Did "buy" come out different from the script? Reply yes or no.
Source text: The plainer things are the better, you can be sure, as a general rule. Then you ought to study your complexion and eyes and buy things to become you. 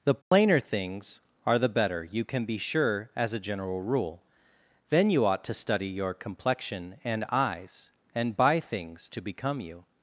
no